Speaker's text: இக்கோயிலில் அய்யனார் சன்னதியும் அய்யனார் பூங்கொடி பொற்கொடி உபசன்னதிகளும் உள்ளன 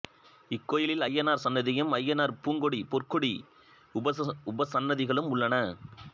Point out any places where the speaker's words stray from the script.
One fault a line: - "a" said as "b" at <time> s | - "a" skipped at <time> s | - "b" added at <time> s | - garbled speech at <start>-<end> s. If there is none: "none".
none